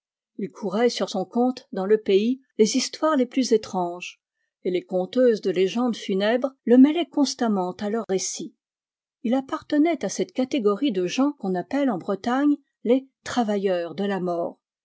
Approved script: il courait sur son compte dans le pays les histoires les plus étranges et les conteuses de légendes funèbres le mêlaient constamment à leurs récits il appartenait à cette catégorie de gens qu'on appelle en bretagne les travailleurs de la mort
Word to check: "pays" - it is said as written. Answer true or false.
true